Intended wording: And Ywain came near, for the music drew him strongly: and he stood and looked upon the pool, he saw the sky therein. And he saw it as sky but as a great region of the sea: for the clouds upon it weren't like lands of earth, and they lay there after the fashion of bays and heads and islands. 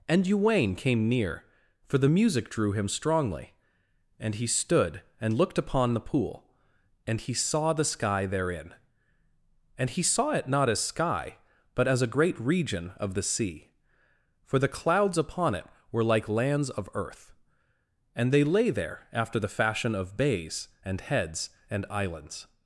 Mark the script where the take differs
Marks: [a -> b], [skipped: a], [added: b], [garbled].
And Ywain came near, for the music drew him strongly: and he stood and looked upon the pool, [added: and] he saw the sky therein. And he saw it [added: not] as sky but as a great region of the sea: for the clouds upon it [weren't -> were] like lands of earth, and they lay there after the fashion of bays and heads and islands.